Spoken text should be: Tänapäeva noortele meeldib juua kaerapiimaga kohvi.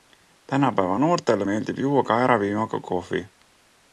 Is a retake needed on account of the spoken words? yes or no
no